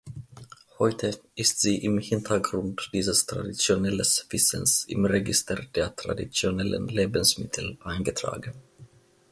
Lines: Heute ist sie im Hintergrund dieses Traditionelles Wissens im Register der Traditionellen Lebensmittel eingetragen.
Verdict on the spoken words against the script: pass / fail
pass